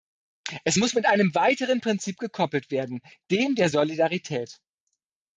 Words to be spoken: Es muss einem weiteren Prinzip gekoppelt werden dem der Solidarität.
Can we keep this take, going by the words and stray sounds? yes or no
no